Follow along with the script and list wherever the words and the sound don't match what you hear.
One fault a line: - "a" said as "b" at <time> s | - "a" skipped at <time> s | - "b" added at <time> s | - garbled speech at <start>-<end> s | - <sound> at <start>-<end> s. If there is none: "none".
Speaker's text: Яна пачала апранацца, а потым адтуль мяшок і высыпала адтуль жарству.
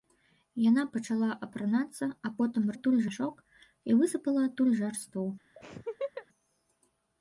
- laugh at 5.6-6.3 s